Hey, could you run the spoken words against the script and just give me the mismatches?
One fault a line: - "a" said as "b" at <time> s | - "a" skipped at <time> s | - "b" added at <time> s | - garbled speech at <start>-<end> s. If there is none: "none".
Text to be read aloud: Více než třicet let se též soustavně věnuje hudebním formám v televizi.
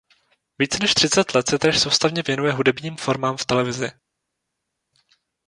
none